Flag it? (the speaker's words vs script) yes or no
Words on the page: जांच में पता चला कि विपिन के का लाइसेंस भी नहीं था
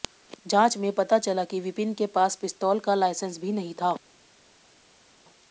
yes